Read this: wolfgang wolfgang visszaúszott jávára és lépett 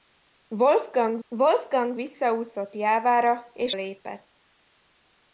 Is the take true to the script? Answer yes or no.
yes